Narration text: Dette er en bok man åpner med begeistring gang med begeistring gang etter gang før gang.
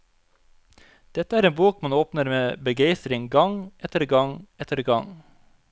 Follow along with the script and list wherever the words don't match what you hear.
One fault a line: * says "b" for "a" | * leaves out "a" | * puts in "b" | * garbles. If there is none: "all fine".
* says "etter" for "med begeistring"
* leaves out "før gang"